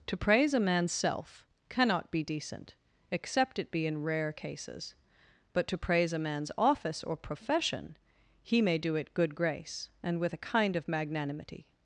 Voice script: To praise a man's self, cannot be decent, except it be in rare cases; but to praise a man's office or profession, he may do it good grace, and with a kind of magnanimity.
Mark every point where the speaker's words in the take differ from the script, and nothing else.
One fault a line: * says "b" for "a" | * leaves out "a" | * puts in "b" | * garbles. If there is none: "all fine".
all fine